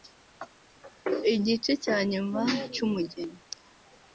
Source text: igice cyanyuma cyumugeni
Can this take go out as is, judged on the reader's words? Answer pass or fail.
pass